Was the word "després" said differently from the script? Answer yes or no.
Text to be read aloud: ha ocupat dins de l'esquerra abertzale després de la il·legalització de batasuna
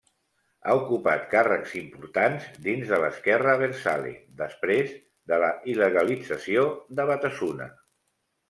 no